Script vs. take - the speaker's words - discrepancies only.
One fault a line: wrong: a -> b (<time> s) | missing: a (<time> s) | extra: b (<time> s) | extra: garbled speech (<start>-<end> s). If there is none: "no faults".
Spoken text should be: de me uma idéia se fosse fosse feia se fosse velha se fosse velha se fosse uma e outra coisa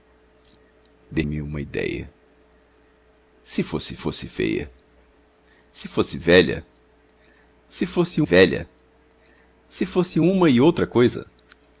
no faults